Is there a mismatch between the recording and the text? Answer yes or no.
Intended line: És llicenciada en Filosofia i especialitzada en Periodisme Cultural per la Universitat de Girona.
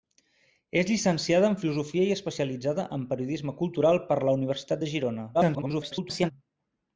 yes